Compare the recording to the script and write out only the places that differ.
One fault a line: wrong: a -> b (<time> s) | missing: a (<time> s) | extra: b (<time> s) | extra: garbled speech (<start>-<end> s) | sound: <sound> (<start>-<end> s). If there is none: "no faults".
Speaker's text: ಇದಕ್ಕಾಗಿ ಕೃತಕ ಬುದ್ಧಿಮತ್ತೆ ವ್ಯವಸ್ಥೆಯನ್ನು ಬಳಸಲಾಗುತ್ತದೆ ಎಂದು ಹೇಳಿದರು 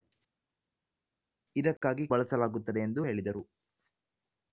missing: ಕೃತಕ ಬುದ್ಧಿಮತ್ತೆ ವ್ಯವಸ್ಥೆಯನ್ನು (2.1 s)